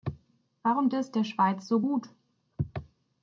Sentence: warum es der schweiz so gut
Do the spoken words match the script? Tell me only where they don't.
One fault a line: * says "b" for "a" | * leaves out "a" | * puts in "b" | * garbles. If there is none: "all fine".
all fine